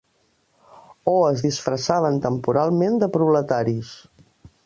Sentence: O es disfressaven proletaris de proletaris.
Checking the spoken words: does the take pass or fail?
fail